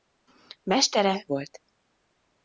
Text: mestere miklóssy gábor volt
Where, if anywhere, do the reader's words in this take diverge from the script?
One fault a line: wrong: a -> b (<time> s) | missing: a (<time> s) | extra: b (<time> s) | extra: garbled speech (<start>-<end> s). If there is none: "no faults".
missing: miklóssy gábor (1.2 s)